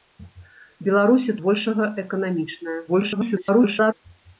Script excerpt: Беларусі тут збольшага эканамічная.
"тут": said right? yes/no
no